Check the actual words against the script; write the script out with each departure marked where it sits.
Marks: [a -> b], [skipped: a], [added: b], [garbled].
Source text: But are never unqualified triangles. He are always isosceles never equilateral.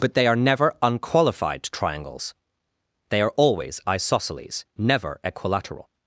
But [added: they] are never unqualified triangles. [He -> They] are always isosceles never equilateral.